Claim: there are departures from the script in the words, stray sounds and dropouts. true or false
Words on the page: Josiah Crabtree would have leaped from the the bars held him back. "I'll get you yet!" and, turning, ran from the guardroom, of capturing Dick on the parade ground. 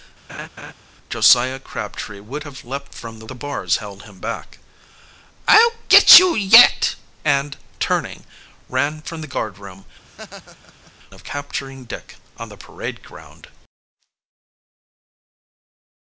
true